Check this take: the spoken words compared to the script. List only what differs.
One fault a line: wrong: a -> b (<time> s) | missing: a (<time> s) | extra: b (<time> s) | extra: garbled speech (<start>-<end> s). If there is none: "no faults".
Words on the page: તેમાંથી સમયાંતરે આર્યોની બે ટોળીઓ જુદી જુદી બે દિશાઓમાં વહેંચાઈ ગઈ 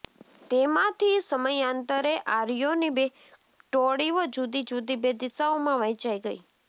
no faults